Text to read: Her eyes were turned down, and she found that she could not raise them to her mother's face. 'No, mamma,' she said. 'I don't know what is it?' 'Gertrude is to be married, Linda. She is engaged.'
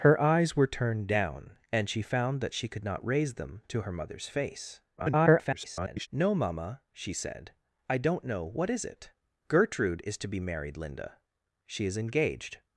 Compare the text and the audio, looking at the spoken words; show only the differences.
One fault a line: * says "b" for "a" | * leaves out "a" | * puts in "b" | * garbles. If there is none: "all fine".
* garbles